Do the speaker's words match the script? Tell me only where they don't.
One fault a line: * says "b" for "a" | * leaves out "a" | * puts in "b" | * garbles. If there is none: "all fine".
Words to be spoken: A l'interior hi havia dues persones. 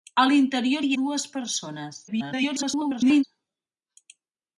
* leaves out "havia"
* garbles